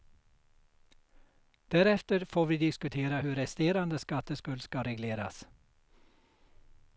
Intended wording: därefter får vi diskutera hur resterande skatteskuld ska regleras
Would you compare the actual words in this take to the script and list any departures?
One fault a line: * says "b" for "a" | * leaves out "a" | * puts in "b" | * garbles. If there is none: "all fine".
all fine